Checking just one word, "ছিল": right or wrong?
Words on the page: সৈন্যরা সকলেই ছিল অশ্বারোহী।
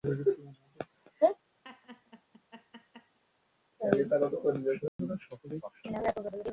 wrong